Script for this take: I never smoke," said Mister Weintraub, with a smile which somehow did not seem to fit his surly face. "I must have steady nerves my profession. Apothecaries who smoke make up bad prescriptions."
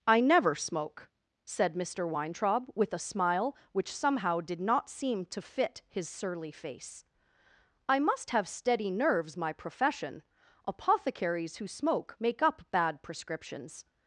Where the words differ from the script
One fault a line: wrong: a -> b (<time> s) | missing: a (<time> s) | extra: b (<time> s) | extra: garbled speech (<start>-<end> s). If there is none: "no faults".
no faults